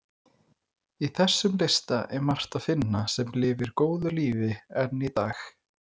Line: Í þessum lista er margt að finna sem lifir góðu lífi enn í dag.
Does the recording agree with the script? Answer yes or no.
yes